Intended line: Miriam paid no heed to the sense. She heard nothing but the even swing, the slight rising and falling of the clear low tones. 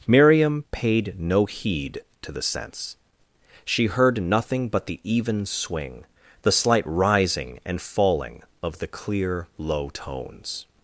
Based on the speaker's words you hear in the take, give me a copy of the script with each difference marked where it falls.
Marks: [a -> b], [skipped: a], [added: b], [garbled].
Miriam paid no heed to the sense. She heard nothing but the even swing, the slight rising and falling of the clear low tones.